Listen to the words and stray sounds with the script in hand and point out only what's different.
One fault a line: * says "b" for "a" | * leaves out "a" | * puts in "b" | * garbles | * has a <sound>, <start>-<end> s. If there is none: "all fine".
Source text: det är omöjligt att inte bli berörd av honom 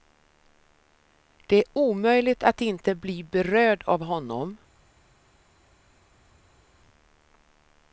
all fine